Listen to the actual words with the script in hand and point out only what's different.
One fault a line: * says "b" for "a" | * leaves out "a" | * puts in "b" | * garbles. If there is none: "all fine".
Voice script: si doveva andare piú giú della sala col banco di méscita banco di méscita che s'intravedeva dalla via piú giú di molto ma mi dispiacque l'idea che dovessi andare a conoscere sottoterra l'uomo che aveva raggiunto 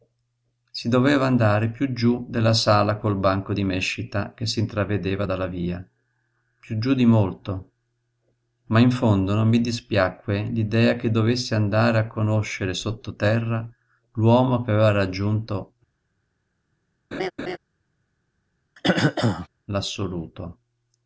* leaves out "banco di méscita"
* puts in "in fondo non"